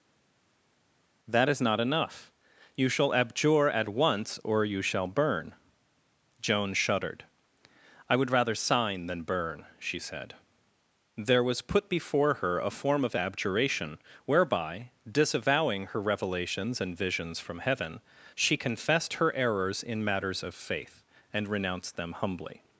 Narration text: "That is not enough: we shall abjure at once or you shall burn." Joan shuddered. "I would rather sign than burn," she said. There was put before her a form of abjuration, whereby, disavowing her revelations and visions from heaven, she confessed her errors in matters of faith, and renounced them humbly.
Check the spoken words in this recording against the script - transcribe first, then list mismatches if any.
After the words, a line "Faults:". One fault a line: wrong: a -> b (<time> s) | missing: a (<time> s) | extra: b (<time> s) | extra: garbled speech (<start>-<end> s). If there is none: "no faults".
"That is not enough: you shall abjure at once or you shall burn." Joan shuddered. "I would rather sign than burn," she said. There was put before her a form of abjuration, whereby, disavowing her revelations and visions from heaven, she confessed her errors in matters of faith, and renounced them humbly.
Faults:
wrong: we -> you (2.7 s)